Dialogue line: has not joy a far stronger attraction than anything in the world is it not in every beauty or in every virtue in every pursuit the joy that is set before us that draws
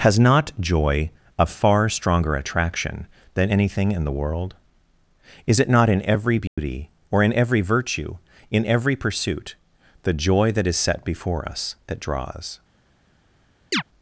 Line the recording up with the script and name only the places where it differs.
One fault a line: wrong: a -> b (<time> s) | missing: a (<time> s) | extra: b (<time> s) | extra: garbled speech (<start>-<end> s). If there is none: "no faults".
no faults